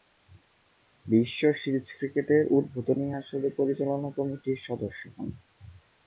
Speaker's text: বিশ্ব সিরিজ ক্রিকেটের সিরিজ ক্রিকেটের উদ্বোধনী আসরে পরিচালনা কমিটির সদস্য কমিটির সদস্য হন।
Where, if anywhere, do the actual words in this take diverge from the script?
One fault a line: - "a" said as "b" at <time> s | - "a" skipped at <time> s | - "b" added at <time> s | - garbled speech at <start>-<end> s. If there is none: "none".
- "সিরিজ ক্রিকেটের" skipped at 2.4 s
- "কমিটির সদস্য" skipped at 5.0 s